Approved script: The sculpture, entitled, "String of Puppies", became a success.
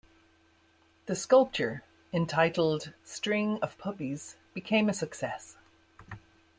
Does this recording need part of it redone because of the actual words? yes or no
no